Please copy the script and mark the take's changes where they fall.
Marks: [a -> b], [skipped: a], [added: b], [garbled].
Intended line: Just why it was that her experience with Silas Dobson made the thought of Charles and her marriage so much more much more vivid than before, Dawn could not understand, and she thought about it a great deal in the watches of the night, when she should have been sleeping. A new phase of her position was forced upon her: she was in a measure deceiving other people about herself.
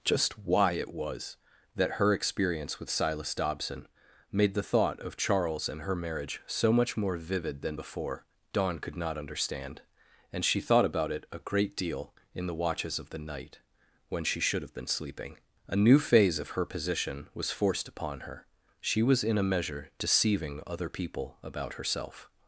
Just why it was that her experience with Silas Dobson made the thought of Charles and her marriage so much more [skipped: much more] vivid than before, Dawn could not understand, and she thought about it a great deal in the watches of the night, when she should have been sleeping. A new phase of her position was forced upon her: she was in a measure deceiving other people about herself.